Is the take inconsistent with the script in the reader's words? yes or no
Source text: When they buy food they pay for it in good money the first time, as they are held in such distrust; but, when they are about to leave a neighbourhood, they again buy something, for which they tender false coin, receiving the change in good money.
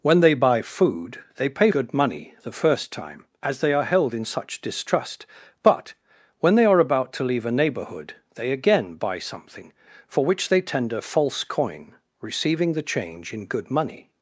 yes